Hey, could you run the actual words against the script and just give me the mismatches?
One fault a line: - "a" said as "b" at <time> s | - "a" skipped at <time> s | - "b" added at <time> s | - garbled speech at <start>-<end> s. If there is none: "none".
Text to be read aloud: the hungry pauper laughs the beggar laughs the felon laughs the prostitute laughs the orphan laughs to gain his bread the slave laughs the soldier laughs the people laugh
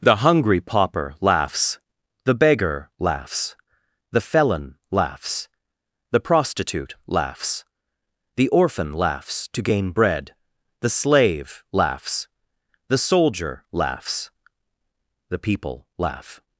- "his" skipped at 9.9 s